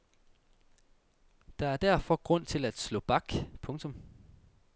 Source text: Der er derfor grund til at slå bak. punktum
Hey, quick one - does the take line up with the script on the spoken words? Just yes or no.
yes